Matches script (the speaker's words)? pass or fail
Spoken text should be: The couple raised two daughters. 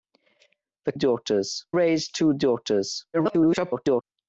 fail